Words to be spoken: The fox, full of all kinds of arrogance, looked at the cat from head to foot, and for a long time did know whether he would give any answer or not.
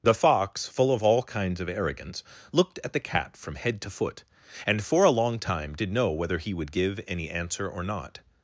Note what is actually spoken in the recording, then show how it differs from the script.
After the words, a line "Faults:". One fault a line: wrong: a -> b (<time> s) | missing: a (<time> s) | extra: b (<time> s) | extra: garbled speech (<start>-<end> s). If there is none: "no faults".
The fox, full of all kinds of arrogance, looked at the cat from head to foot, and for a long time did know whether he would give any answer or not.
Faults:
no faults